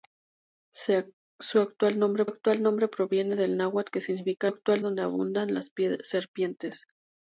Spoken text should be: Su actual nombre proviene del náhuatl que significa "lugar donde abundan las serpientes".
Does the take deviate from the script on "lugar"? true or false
true